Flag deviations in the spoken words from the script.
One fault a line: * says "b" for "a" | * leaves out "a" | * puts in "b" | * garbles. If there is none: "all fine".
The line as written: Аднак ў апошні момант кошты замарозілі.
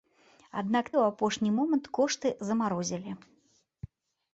all fine